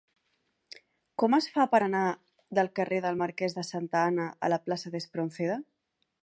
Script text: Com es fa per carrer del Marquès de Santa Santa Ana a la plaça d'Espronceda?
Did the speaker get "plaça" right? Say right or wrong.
right